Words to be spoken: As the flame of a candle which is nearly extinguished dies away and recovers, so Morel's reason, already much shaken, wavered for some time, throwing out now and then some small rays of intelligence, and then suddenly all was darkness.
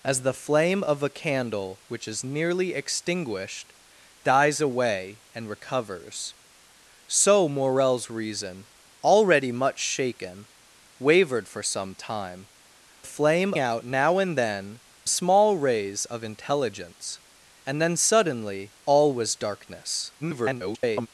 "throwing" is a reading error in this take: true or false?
true